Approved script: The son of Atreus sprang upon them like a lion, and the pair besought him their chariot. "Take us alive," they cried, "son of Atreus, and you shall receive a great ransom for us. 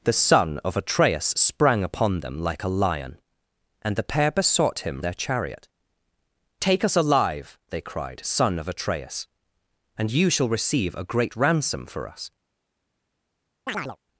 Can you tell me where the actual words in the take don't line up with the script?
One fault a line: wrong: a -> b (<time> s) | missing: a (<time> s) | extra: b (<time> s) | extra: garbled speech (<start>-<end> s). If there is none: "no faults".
no faults